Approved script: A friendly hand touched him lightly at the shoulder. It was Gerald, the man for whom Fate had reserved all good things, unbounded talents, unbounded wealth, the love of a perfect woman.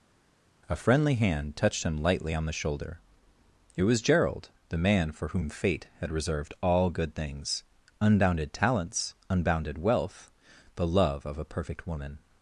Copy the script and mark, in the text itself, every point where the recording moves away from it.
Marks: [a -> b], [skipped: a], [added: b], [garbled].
A friendly hand touched him lightly [at -> on] the shoulder. It was Gerald, the man for whom Fate had reserved all good things, unbounded talents, unbounded wealth, the love of a perfect woman.